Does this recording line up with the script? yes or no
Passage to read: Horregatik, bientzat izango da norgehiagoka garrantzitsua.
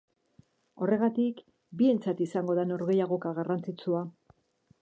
yes